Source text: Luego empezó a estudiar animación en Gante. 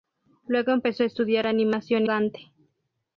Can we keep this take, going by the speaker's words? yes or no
no